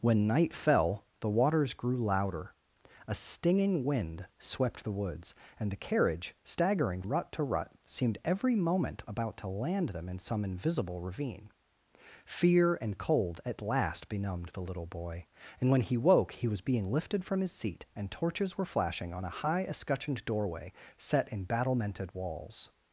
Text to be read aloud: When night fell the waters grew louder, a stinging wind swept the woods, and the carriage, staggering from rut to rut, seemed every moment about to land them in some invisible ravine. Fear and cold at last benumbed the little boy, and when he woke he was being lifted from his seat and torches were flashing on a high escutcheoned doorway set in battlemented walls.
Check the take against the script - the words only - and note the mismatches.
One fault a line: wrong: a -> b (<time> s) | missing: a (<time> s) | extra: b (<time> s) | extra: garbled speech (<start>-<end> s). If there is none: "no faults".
missing: from (7.0 s)